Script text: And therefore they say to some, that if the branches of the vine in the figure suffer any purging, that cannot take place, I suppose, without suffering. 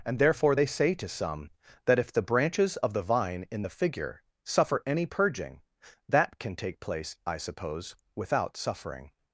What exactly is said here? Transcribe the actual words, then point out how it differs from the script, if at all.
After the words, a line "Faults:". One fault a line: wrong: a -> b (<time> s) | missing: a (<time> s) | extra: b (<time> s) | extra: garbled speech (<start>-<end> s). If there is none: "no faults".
And therefore they say to some, that if the branches of the vine in the figure suffer any purging, that can take place, I suppose, without suffering.
Faults:
wrong: cannot -> can (6.4 s)